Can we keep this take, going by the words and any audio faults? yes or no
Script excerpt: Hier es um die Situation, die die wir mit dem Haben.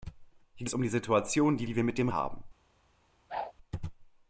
no